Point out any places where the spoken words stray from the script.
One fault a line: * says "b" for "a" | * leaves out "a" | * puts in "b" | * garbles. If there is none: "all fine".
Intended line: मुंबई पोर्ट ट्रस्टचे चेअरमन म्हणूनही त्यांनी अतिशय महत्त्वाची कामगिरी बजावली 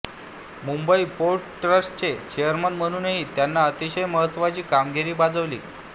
all fine